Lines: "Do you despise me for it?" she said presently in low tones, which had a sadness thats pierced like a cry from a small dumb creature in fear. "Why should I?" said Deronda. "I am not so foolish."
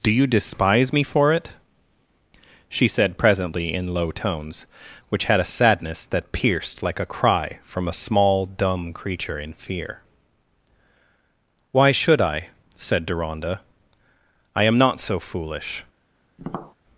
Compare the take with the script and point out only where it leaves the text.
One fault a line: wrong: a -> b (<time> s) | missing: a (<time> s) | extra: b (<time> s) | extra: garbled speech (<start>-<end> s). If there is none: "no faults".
wrong: thats -> that (6.1 s)